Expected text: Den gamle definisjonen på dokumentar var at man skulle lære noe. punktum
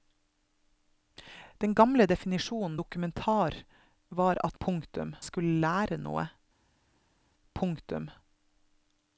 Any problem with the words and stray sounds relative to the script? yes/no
yes